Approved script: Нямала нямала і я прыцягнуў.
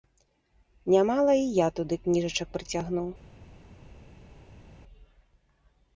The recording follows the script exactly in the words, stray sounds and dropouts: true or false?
false